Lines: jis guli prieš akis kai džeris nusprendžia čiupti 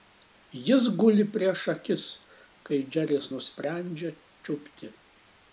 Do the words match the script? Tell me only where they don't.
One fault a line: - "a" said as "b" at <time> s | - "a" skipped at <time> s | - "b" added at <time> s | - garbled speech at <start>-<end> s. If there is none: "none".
none